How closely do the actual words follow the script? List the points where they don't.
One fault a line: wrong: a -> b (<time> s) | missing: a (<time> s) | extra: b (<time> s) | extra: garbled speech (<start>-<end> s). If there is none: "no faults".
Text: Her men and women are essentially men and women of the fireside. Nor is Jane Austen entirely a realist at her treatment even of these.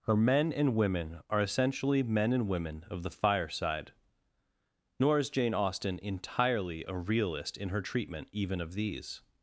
wrong: at -> in (7.5 s)